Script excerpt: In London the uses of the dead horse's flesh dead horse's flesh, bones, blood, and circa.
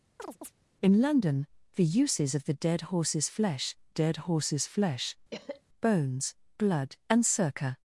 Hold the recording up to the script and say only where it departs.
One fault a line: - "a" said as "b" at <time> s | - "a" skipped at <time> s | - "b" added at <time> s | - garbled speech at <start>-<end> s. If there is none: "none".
none